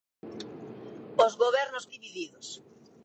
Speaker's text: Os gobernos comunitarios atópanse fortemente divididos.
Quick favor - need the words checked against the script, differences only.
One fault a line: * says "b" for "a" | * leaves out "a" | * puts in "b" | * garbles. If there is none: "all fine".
* leaves out "comunitarios atópanse fortemente"